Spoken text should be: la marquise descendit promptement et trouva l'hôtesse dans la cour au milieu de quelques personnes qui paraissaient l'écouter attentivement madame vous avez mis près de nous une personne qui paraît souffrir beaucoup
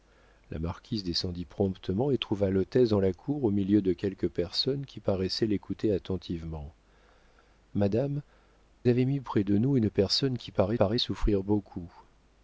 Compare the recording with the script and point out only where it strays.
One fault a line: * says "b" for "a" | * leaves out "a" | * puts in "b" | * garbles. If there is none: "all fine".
* leaves out "vous"
* puts in "paraît"